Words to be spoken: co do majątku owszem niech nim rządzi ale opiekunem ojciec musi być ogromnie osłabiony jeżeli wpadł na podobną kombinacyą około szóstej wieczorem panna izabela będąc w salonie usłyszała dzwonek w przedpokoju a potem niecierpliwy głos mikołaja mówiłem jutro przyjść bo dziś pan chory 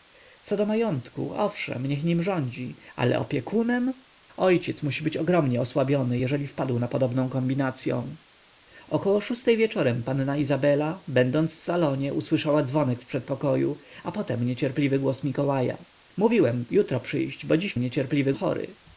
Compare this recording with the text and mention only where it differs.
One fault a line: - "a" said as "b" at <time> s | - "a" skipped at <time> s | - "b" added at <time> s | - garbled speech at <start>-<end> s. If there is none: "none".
- "pan" said as "niecierpliwy" at 17.8 s